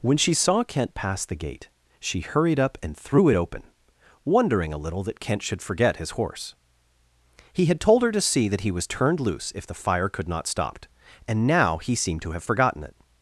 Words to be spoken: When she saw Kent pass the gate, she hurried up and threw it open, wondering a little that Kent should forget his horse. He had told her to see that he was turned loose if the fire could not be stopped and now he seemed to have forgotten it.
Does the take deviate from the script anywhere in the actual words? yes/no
yes